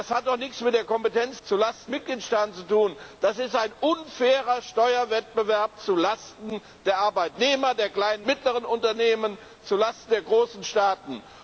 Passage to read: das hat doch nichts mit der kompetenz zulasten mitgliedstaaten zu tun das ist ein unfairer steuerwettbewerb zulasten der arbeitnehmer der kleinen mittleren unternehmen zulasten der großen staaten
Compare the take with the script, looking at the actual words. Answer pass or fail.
pass